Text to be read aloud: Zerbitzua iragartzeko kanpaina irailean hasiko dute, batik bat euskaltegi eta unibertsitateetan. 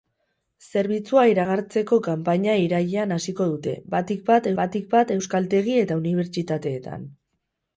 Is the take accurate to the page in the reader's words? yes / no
no